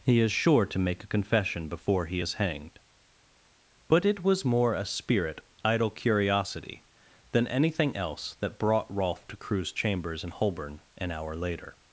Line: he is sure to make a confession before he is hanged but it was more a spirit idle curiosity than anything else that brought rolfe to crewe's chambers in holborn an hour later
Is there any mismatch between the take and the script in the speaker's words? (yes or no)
no